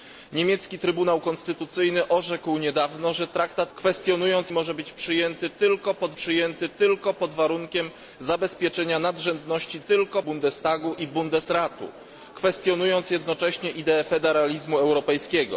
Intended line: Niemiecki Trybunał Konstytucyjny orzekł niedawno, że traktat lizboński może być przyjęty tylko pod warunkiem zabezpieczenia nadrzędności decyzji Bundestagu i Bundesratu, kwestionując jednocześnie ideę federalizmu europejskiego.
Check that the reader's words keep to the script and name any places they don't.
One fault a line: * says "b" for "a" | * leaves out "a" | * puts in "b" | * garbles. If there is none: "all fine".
* says "kwestionując" for "lizboński"
* puts in "przyjęty tylko pod"
* says "tylko" for "decyzji"